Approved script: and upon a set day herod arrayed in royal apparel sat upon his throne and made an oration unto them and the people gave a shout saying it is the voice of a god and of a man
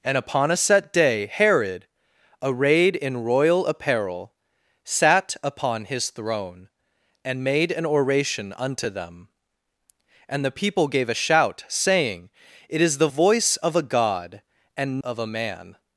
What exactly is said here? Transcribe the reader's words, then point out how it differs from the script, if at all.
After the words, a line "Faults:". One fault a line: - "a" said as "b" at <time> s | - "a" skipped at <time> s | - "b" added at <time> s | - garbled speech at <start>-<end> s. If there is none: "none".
and upon a set day herod arrayed in royal apparel sat upon his throne and made an oration unto them and the people gave a shout saying it is the voice of a god and of a man
Faults:
none